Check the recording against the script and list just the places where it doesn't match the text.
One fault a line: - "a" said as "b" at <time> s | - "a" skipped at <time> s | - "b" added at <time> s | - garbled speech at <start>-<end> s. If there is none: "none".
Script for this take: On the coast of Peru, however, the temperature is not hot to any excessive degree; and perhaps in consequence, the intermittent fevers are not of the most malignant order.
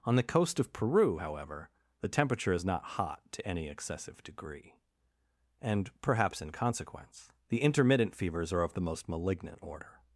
- "not" skipped at 8.6 s